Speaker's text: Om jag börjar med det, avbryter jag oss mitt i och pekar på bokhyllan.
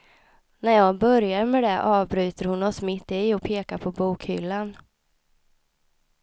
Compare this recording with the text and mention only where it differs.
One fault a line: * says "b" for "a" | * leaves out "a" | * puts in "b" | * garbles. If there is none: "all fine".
* says "När" for "Om"
* says "hon" for "jag"